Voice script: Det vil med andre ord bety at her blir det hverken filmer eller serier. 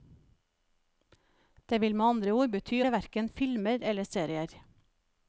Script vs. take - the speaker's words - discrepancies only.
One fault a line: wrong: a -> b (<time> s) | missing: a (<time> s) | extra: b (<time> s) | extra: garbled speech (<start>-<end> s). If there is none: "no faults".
missing: at her blir (2.8 s)